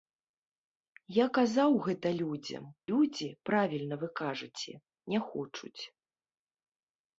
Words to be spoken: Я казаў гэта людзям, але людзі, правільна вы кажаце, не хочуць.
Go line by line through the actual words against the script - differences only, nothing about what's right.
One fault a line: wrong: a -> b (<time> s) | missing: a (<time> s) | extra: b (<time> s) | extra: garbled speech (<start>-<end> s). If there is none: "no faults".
missing: але (2.6 s)